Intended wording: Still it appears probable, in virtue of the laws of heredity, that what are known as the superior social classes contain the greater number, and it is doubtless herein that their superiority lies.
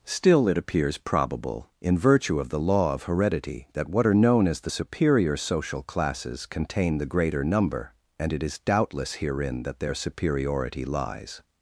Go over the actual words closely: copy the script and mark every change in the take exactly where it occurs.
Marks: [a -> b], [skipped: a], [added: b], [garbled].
Still it appears probable, in virtue of the [laws -> law] of heredity, that what are known as the superior social classes contain the greater number, and it is doubtless herein that their superiority lies.